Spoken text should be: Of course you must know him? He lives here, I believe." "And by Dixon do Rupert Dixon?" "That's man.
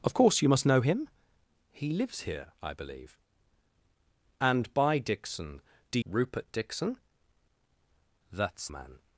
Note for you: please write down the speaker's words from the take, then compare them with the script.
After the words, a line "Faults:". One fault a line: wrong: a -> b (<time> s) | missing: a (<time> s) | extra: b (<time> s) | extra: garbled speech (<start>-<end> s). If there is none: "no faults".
Of course you must know him? He lives here, I believe." "And by Dixon do Rupert Dixon?" "That's man.
Faults:
no faults